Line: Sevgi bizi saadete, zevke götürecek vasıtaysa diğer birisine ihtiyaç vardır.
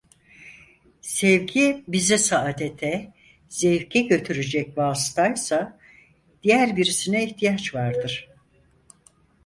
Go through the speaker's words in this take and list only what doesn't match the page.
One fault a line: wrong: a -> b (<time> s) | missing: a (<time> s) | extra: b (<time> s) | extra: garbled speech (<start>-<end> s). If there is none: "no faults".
no faults